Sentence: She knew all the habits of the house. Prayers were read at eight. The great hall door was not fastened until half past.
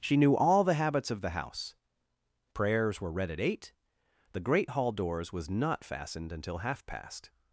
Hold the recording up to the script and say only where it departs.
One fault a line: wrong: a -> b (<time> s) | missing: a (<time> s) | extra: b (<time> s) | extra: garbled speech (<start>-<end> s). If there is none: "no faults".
wrong: door -> doors (4.9 s)